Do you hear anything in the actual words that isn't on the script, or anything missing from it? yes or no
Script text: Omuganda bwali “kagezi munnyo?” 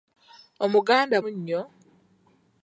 yes